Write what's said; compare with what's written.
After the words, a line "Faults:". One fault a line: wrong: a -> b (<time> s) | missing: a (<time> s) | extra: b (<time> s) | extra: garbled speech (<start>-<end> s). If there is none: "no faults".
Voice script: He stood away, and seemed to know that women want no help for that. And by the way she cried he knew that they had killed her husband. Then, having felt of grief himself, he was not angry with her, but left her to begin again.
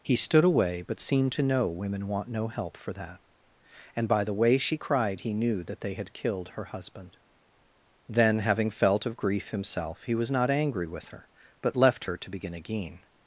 He stood away, but seemed to know women want no help for that. And by the way she cried he knew that they had killed her husband. Then, having felt of grief himself, he was not angry with her, but left her to begin again.
Faults:
wrong: and -> but (0.8 s)
missing: that (1.7 s)